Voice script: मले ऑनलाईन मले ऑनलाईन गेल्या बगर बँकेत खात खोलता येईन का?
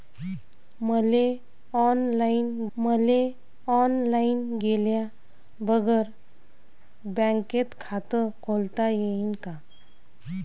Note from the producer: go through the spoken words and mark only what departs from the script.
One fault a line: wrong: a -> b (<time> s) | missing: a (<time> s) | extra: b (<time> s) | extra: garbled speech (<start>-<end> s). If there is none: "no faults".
no faults